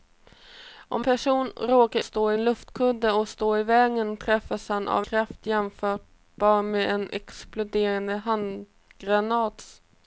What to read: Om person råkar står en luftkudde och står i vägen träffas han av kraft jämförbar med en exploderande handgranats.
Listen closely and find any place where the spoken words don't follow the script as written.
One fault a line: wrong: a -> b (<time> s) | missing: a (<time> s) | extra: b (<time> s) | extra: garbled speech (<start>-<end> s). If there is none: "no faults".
no faults